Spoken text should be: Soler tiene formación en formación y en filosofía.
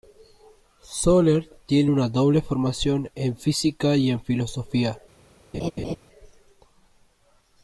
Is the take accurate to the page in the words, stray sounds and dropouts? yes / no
no